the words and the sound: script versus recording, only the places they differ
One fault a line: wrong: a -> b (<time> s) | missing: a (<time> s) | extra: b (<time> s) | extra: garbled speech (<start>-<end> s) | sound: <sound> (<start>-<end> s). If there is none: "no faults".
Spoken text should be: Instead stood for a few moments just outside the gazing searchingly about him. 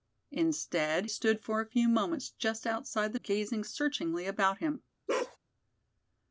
sound: bark (5.1-5.4 s)